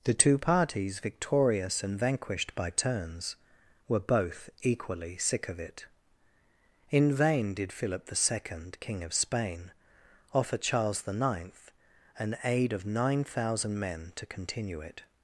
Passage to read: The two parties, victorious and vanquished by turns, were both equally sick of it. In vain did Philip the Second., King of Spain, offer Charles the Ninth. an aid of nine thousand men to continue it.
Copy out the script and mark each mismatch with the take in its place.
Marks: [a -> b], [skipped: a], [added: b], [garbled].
The two parties, victorious and vanquished by turns, were both equally sick of it. In vain did Philip the Second., King of Spain, offer Charles the Ninth. an aid of nine thousand men to continue it.